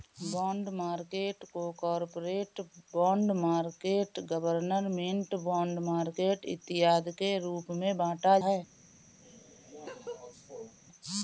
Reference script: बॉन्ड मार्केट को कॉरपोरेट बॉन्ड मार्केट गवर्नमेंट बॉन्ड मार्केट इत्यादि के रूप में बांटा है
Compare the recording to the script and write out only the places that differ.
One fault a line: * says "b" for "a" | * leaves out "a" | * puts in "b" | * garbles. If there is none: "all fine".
all fine